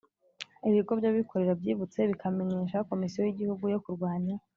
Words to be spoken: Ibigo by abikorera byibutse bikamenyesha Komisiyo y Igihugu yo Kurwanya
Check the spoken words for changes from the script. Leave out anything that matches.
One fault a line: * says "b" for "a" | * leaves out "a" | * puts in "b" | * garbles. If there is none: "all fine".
all fine